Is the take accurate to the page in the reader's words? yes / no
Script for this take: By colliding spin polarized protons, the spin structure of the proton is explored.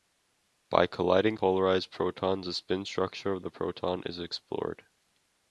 no